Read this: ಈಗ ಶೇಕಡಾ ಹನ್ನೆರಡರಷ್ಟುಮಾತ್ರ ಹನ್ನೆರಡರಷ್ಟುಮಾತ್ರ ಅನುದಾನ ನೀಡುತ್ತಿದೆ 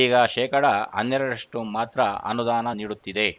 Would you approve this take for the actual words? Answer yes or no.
no